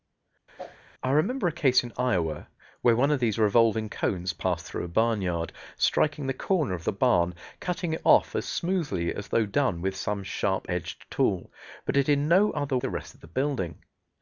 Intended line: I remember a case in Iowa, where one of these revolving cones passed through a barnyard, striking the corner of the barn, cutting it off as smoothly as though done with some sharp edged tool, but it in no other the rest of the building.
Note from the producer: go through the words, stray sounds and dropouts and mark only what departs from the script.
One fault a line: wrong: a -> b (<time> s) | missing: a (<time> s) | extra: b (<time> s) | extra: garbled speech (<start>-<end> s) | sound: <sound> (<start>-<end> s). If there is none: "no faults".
sound: whoosh (0.6-0.8 s)